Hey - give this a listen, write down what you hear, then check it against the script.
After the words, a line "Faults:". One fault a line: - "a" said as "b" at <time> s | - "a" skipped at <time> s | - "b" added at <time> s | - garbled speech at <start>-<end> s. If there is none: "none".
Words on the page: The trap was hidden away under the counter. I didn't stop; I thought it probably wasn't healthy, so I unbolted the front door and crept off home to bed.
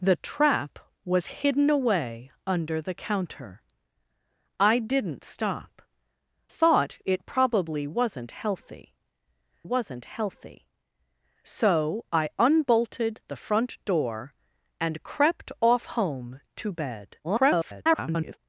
The trap was hidden away under the counter. I didn't stop; thought it probably wasn't healthy wasn't healthy, so I unbolted the front door and crept off home to bed. [garbled]
Faults:
- "I" skipped at 5.8 s
- "wasn't healthy" added at 9.6 s
- garbled speech at 17.2-18.4 s